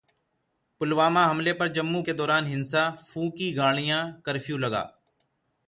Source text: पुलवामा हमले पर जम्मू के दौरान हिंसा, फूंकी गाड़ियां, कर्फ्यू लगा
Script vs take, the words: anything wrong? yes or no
no